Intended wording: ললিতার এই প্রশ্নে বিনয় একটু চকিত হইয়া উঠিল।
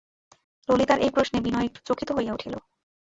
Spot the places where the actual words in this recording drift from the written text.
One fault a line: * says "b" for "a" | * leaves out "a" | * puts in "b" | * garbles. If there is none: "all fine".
all fine